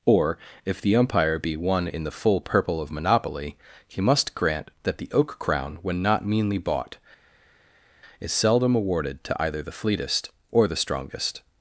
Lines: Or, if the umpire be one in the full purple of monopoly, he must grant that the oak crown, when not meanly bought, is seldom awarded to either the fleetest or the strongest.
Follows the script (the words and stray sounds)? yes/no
yes